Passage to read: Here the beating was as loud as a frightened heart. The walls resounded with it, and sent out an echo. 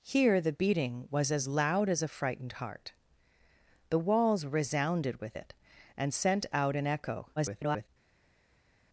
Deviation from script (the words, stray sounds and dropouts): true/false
true